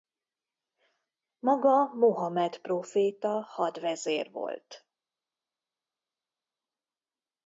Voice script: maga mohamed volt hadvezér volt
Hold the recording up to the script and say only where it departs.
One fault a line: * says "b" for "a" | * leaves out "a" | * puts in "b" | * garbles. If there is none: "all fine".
* says "próféta" for "volt"